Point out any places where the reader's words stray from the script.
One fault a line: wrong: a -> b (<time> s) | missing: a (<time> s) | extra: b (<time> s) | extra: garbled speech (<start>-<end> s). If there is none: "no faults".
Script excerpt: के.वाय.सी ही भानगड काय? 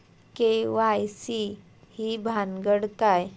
no faults